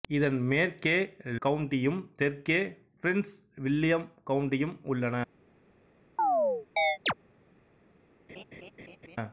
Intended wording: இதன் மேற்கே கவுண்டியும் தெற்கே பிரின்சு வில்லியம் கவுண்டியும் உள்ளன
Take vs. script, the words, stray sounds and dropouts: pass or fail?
fail